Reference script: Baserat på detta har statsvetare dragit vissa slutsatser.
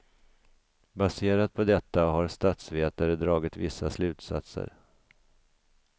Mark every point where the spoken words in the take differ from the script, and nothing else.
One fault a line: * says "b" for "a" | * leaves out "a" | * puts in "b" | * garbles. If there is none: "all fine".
all fine